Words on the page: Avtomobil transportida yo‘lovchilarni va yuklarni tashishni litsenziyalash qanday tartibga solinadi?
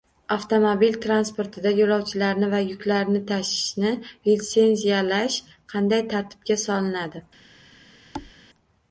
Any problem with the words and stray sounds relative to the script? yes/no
yes